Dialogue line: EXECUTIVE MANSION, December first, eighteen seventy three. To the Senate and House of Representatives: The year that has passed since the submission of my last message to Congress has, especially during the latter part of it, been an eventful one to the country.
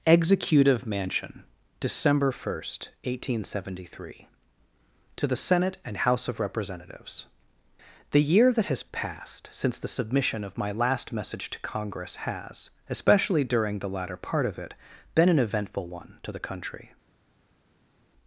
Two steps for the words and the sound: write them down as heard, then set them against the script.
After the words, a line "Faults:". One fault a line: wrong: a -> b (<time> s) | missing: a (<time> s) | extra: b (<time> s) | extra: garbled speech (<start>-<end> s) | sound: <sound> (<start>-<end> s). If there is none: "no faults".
EXECUTIVE MANSION, December first, eighteen seventy three. To the Senate and House of Representatives: The year that has passed since the submission of my last message to Congress has, especially during the latter part of it, been an eventful one to the country.
Faults:
no faults